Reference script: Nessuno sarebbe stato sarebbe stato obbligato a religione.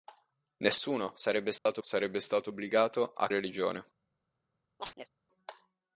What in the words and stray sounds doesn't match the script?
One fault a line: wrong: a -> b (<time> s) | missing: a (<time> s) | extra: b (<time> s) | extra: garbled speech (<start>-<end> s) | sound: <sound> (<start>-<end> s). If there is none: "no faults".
sound: dropout (1.6-1.7 s)
sound: chirp (4.8-5.1 s)